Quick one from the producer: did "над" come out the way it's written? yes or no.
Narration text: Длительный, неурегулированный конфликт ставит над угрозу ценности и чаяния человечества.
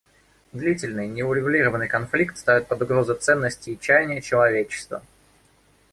no